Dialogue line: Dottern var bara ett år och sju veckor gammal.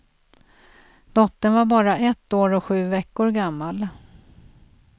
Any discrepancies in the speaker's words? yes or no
no